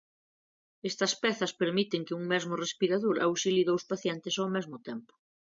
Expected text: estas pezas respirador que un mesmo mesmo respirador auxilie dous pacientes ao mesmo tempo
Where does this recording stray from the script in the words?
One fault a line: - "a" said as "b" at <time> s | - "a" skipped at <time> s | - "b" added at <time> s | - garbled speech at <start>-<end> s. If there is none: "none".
- "respirador" said as "permiten" at 1.6 s
- "mesmo" skipped at 2.5 s